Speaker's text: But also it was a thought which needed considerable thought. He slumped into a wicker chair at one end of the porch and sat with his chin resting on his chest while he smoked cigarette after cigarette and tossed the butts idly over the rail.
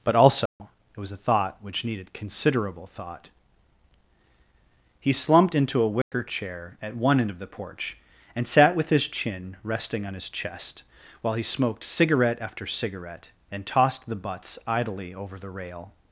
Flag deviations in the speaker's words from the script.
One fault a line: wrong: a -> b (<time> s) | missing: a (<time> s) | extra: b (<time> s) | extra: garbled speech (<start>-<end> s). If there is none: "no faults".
no faults